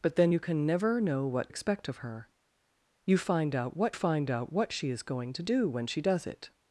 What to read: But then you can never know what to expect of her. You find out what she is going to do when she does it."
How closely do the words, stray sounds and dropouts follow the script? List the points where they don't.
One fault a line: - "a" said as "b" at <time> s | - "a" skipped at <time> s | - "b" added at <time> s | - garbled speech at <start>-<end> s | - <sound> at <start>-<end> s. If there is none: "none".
- "to" skipped at 1.5 s
- "find out what" added at 3.9 s